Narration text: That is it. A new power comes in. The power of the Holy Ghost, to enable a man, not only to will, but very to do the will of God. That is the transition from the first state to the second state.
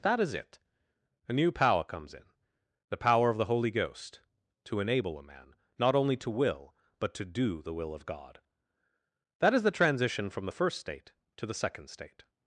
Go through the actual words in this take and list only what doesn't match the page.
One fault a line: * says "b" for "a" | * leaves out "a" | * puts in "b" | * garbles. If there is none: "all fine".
* leaves out "very"